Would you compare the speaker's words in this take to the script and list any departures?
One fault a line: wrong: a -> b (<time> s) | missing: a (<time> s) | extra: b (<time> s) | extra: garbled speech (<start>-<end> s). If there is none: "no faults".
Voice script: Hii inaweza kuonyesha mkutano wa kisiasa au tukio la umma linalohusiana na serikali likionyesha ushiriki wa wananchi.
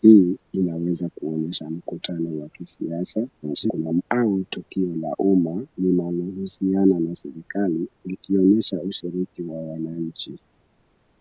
extra: garbled speech (3.4-4.0 s)